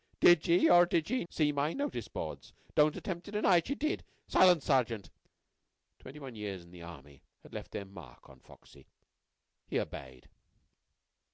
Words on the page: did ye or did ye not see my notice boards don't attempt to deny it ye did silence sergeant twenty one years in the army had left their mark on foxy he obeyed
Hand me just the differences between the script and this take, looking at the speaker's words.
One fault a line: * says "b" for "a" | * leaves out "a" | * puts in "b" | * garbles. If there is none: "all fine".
* leaves out "not"